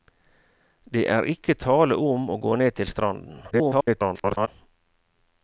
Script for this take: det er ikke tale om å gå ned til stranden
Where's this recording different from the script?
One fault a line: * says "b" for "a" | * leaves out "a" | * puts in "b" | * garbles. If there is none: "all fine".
* garbles